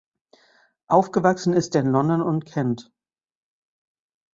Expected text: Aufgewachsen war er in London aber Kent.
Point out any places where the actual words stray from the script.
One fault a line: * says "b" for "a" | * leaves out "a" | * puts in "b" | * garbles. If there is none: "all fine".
* says "ist" for "war"
* says "und" for "aber"